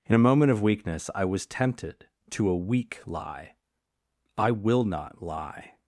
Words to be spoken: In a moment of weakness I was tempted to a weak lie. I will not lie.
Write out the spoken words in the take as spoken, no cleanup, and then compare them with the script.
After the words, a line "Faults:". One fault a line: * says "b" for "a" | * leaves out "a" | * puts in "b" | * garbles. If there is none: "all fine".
In a moment of weakness I was tempted to a weak lie. I will not lie.
Faults:
all fine